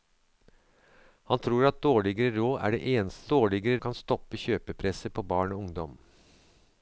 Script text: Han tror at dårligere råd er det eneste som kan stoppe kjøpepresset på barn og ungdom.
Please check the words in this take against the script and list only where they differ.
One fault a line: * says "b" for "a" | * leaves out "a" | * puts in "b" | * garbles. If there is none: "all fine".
* says "dårligere" for "som"